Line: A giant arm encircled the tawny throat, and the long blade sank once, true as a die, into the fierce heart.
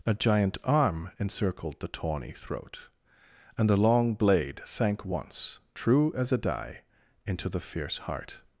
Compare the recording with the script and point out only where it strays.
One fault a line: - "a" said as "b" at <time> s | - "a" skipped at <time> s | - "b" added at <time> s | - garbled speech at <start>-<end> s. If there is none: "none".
none